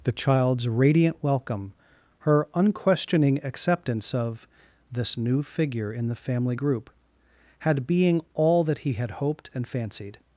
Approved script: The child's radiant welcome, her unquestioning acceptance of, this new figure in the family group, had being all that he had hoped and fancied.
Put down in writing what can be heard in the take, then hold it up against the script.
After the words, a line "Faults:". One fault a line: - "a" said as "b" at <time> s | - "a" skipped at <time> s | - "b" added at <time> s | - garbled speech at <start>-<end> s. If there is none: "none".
The child's radiant welcome, her unquestioning acceptance of, this new figure in the family group, had being all that he had hoped and fancied.
Faults:
none